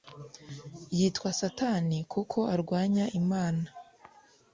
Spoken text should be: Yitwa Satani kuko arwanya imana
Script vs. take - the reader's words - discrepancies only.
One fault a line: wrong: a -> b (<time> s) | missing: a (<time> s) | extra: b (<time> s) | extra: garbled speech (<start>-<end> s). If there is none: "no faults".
no faults